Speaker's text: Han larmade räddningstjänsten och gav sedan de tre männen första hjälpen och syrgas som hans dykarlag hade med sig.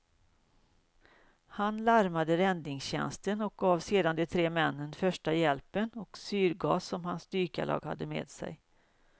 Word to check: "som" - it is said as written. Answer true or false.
true